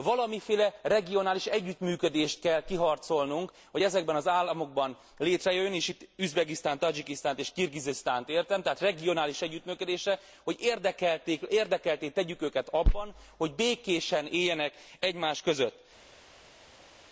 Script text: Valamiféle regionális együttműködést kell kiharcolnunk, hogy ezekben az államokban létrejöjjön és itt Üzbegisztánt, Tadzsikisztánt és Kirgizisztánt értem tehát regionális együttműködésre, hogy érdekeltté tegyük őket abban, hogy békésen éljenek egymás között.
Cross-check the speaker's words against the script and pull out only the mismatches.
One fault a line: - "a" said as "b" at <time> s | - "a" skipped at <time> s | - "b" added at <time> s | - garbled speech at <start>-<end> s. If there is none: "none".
none